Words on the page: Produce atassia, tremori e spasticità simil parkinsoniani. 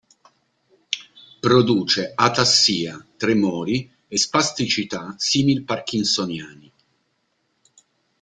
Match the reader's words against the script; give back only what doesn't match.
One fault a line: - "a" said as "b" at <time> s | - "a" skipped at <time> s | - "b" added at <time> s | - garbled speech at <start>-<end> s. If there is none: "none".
none